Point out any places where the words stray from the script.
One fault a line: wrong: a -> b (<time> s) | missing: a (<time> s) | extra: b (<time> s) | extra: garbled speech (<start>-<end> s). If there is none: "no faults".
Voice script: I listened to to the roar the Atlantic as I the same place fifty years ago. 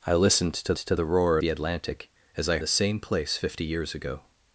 no faults